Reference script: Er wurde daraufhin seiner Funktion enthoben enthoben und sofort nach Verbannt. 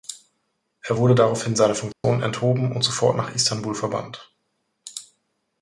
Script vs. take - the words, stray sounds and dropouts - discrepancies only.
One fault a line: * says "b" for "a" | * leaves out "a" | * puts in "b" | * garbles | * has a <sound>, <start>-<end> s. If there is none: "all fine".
* has a dropout, 1.9-2.0 s
* leaves out "enthoben"
* puts in "Istanbul"